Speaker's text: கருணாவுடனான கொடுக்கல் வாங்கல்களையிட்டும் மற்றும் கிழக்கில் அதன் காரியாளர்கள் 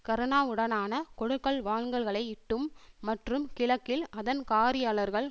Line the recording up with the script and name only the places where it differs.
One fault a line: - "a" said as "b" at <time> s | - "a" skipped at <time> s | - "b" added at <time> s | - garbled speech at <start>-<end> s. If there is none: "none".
none